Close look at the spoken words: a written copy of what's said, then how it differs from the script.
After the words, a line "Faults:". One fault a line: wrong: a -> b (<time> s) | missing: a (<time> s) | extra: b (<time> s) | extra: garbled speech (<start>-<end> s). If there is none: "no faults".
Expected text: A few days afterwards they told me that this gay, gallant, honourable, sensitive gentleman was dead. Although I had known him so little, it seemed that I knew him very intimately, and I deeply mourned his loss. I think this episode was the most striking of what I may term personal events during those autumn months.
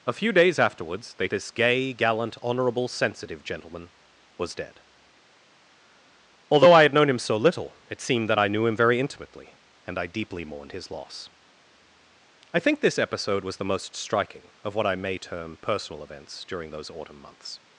A few days afterwards they this gay, gallant, honourable, sensitive gentleman was dead. Although I had known him so little, it seemed that I knew him very intimately, and I deeply mourned his loss. I think this episode was the most striking of what I may term personal events during those autumn months.
Faults:
missing: told me that (1.3 s)